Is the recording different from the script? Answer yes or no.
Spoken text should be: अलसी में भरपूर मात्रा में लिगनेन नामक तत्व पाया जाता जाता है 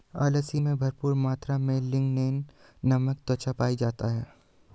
yes